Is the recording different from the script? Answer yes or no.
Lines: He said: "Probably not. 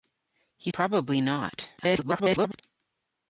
yes